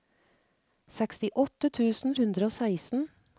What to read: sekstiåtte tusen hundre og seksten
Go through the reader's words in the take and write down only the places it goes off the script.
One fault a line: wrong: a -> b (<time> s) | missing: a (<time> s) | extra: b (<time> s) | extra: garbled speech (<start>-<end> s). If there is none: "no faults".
no faults